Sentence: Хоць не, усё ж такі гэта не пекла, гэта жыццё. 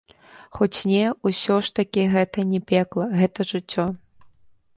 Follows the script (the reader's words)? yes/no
yes